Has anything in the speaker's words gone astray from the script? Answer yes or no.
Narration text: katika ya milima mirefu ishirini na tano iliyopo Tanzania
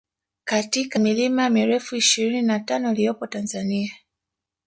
yes